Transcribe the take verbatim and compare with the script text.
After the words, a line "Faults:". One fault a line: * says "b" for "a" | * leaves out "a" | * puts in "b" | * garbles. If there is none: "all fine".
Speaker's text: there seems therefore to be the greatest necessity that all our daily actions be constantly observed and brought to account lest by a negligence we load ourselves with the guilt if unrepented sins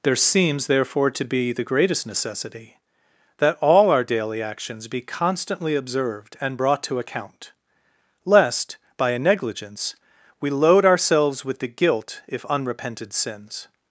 there seems therefore to be the greatest necessity that all our daily actions be constantly observed and brought to account lest by a negligence we load ourselves with the guilt if unrepented sins
Faults:
all fine